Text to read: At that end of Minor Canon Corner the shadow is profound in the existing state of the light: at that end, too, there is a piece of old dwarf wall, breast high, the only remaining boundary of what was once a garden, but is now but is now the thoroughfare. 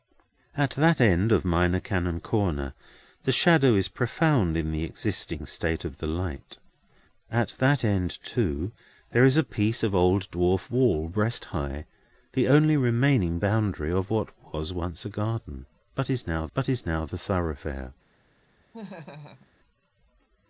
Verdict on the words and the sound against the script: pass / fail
fail